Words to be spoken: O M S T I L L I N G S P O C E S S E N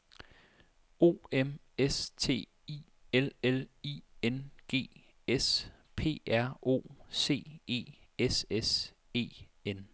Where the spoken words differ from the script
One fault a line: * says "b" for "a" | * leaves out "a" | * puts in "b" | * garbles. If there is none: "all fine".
* puts in "R"